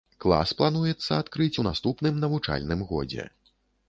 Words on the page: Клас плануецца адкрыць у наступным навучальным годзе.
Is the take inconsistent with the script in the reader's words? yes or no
no